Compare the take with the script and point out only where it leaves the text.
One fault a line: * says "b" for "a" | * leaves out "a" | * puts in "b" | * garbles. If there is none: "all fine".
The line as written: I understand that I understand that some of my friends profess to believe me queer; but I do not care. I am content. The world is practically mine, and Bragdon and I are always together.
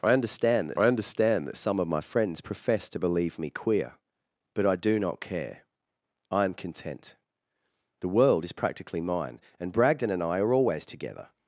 all fine